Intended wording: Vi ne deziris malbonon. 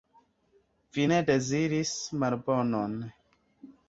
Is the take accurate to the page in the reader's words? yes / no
yes